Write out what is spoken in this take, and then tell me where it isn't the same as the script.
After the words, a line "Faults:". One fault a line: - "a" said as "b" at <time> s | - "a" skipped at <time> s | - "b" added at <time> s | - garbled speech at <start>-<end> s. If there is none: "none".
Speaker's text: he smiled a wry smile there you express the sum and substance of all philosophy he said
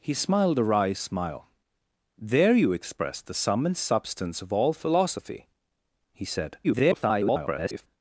he smiled a wry smile there you express the sum and substance of all philosophy he said [garbled]
Faults:
- garbled speech at 6.6-7.9 s